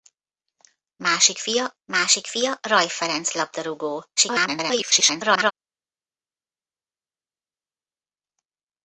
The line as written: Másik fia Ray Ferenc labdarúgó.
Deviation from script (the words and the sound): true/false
true